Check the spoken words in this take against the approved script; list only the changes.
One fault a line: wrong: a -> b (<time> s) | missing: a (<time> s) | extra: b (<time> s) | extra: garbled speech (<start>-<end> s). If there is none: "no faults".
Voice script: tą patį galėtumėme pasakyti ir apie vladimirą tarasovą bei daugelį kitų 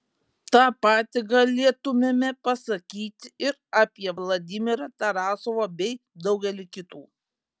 no faults